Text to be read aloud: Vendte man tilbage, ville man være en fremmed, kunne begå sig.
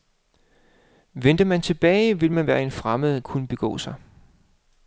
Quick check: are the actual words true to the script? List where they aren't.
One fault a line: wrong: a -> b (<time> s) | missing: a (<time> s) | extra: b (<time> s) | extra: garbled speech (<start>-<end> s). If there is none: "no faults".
no faults